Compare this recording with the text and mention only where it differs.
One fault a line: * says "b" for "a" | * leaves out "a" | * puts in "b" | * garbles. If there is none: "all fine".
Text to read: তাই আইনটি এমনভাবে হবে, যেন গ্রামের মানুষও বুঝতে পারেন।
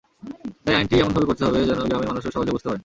* puts in "করতে"
* puts in "সহজে"